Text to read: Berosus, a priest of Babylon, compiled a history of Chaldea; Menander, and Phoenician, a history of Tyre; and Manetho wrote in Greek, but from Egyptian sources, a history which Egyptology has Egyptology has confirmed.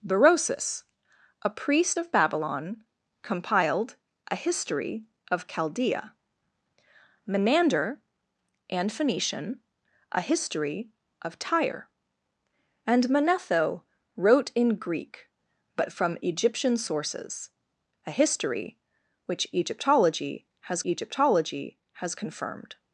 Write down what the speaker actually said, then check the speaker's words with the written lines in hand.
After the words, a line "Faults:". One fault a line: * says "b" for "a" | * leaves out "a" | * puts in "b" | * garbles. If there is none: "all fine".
Berosus, a priest of Babylon, compiled a history of Chaldea; Menander, and Phoenician, a history of Tyre; and Manetho wrote in Greek, but from Egyptian sources, a history which Egyptology has Egyptology has confirmed.
Faults:
all fine